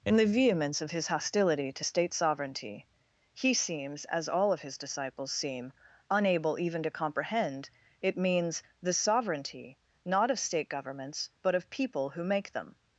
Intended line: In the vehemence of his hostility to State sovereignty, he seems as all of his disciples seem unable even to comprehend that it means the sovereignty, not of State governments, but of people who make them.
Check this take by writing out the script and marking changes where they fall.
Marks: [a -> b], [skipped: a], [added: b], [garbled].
In the vehemence of his hostility to State sovereignty, he seems as all of his disciples seem unable even to comprehend [skipped: that] it means the sovereignty, not of State governments, but of people who make them.